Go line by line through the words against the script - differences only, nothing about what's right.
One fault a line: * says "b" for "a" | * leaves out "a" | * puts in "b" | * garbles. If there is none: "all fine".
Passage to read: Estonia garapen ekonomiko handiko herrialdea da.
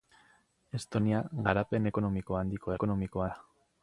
* says "ekonomiko" for "herrialdea"